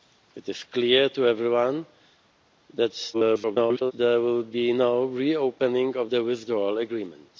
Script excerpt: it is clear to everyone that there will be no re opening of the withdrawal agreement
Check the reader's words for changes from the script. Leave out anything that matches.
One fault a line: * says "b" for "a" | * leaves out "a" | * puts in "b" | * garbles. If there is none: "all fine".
* garbles